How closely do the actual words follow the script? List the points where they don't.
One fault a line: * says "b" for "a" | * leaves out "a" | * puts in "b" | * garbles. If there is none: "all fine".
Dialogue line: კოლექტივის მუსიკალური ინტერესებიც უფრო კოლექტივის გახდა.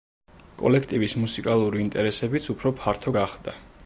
* says "ფართო" for "კოლექტივის"